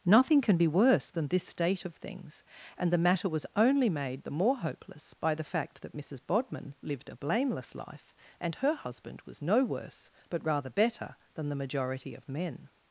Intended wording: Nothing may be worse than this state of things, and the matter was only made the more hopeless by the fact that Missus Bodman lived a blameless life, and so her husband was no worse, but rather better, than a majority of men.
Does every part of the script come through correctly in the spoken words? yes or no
no